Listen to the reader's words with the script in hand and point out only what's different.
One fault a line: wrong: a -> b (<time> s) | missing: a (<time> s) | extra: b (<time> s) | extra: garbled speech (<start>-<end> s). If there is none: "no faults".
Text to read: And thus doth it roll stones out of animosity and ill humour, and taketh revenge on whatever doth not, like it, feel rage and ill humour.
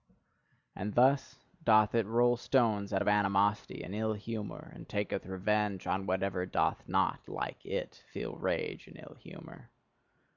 no faults